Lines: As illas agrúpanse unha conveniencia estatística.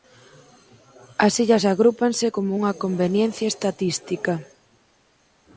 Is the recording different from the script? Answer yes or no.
yes